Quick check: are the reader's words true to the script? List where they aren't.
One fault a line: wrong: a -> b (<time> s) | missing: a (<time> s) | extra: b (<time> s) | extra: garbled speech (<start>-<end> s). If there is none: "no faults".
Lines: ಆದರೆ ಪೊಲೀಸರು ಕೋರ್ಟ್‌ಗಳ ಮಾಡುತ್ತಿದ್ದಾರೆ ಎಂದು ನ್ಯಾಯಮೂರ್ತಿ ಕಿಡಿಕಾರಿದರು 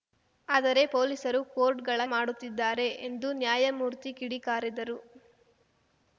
no faults